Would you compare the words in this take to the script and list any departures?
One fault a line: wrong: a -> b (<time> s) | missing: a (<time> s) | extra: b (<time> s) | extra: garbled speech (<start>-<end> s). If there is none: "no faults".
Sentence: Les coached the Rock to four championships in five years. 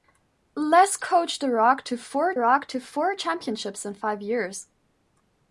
extra: Rock to four (2.4 s)